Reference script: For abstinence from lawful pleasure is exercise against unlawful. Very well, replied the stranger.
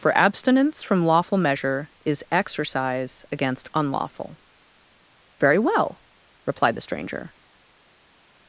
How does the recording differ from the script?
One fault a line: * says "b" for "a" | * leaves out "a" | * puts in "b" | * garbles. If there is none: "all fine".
* says "measure" for "pleasure"